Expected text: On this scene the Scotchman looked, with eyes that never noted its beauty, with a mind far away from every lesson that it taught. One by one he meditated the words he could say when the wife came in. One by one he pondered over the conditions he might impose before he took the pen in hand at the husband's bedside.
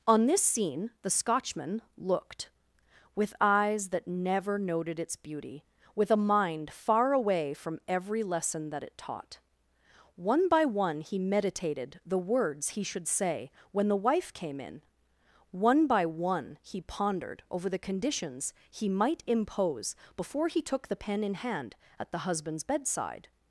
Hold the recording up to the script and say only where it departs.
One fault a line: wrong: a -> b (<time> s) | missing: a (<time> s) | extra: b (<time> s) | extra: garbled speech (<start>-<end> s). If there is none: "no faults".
wrong: could -> should (12.8 s)